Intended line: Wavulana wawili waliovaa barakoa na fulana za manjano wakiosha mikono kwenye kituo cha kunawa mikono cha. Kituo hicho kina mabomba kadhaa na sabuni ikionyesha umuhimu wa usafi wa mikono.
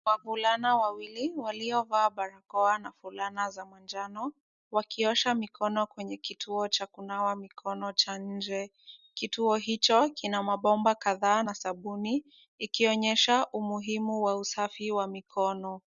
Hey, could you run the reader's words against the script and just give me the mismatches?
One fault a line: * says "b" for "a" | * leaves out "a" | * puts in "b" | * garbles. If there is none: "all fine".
* puts in "nje"